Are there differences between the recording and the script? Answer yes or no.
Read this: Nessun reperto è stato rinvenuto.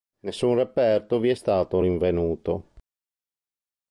yes